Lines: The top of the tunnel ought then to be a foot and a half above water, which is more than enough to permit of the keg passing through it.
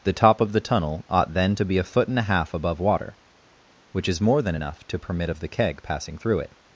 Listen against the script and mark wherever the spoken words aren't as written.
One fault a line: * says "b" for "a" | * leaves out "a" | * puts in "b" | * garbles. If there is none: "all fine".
all fine